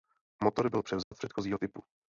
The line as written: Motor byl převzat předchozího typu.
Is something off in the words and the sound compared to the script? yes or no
yes